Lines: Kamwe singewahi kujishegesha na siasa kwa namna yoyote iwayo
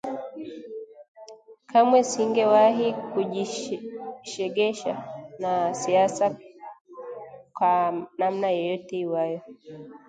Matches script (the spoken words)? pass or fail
pass